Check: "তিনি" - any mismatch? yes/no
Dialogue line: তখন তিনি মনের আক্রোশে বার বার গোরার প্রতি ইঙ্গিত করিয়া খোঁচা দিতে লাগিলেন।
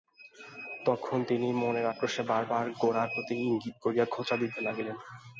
no